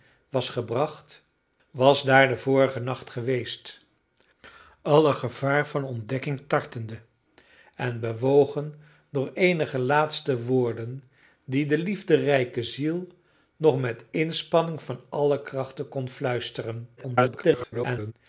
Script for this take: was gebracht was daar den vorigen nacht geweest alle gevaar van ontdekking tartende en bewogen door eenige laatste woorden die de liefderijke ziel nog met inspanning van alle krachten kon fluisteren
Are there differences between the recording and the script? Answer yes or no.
yes